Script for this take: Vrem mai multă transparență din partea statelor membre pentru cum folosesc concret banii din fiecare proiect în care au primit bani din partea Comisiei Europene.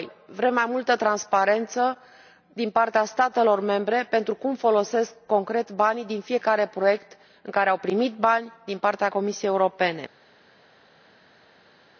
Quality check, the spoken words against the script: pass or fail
pass